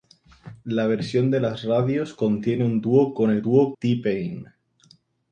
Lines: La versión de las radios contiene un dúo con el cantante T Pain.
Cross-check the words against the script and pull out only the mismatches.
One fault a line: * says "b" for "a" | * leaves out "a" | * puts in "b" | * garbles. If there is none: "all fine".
* says "dúo" for "cantante"